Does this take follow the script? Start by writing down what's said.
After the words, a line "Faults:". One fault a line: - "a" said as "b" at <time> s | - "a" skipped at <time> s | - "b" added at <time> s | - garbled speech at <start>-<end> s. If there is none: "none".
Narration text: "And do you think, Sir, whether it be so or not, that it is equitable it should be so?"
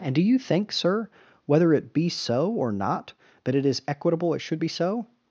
"And do you think, Sir, whether it be so or not, that it is equitable it should be so?"
Faults:
none